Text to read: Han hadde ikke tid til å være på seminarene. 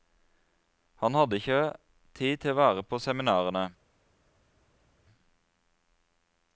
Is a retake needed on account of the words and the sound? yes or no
no